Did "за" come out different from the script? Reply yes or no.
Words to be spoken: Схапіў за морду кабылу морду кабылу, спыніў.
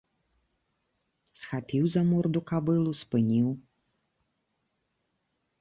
no